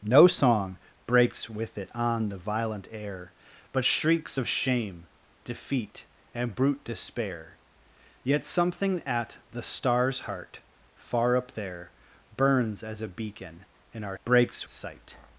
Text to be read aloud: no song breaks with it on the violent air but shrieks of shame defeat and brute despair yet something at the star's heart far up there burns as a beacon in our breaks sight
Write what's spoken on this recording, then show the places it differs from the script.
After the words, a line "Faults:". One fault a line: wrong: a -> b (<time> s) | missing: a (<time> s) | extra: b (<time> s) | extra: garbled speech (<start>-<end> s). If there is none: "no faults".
no song breaks with it on the violent air but shrieks of shame defeat and brute despair yet something at the star's heart far up there burns as a beacon in our breaks sight
Faults:
no faults